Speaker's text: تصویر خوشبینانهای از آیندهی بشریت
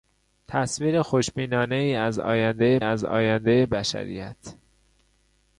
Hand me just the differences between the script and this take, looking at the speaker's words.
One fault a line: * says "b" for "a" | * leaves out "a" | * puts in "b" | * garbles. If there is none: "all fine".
* puts in "از آیندهی"